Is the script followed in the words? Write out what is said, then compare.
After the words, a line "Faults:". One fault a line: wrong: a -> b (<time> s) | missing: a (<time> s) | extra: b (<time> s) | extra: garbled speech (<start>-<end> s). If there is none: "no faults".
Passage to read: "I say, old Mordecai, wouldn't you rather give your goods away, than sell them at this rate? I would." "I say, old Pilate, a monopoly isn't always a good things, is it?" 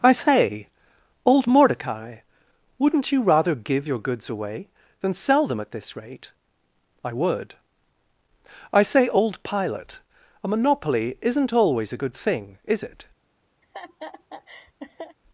"I say, old Mordecai, wouldn't you rather give your goods away, than sell them at this rate? I would." "I say, old Pilate, a monopoly isn't always a good thing, is it?"
Faults:
wrong: things -> thing (12.1 s)